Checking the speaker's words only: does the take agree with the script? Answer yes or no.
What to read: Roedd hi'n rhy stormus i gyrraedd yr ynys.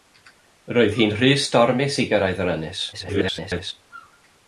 no